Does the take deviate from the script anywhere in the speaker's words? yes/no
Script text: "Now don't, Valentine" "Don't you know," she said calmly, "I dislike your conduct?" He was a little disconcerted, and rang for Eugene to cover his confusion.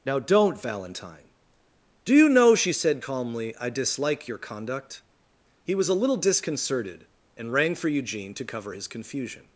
yes